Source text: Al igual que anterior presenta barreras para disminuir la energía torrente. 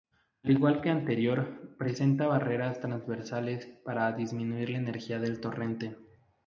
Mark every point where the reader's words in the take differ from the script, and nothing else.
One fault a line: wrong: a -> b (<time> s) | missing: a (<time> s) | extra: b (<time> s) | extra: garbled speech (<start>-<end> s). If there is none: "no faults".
extra: transversales (2.8 s)
extra: del (5.2 s)